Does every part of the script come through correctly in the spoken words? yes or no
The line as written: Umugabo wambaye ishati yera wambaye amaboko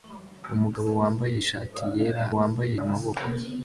yes